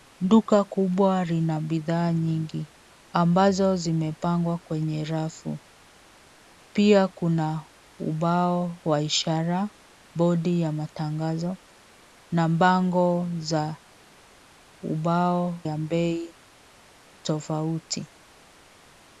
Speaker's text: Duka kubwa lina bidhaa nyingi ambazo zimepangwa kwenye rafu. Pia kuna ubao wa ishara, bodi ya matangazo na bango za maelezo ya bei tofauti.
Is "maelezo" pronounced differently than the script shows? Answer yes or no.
yes